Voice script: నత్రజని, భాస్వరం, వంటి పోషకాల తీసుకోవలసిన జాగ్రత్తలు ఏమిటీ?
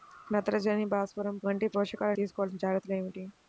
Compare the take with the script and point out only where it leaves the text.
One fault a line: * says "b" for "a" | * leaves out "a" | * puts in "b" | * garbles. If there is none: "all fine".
all fine